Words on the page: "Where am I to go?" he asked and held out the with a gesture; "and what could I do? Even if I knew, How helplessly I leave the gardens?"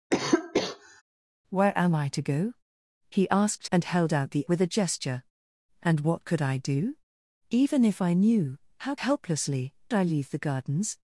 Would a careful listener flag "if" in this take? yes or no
no